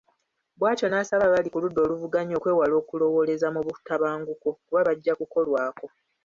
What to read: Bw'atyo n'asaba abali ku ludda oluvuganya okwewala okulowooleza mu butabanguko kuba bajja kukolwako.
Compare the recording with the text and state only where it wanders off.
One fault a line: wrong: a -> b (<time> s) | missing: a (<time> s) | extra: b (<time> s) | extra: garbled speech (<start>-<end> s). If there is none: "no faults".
no faults